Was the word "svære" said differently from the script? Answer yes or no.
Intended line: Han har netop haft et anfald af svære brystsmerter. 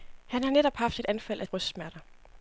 yes